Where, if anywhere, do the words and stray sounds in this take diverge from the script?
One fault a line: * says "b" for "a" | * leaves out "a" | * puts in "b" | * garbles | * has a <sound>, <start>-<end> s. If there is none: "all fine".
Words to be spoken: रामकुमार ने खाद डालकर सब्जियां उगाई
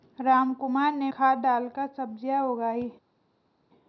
all fine